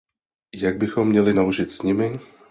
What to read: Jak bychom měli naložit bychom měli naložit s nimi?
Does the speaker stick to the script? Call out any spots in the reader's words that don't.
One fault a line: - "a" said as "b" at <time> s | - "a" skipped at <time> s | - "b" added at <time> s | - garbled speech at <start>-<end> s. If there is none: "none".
- "bychom měli naložit" skipped at 1.7 s